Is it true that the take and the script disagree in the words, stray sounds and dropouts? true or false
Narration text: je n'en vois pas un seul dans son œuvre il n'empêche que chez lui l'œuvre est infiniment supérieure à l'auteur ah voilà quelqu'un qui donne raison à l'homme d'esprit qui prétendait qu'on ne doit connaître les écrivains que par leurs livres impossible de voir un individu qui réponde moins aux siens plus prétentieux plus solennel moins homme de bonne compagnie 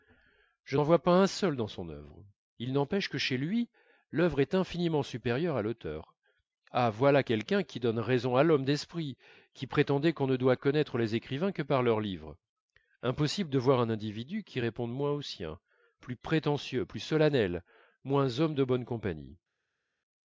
false